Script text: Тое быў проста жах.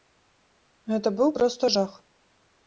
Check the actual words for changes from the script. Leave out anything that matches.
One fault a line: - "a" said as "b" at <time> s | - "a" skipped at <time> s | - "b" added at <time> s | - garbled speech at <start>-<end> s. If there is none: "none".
- "Тое" said as "Гэта" at 0.9 s